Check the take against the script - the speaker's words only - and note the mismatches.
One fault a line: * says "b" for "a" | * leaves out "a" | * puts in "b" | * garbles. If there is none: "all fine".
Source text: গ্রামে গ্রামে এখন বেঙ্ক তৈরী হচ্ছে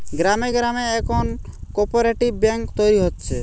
* puts in "কোপরেটিভ"